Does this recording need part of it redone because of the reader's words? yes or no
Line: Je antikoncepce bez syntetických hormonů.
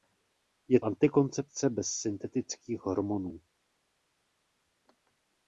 no